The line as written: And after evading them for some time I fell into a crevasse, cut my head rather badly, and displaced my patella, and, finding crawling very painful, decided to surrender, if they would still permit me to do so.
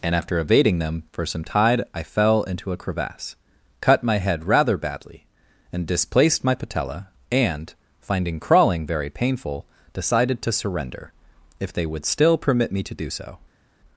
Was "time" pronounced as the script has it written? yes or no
no